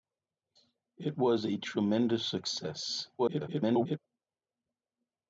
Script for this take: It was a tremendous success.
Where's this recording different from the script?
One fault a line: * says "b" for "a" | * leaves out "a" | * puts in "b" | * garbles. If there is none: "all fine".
* garbles